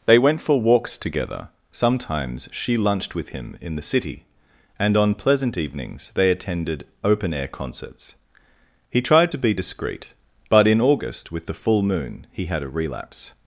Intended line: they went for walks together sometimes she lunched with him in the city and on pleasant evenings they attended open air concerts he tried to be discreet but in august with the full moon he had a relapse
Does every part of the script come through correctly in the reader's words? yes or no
yes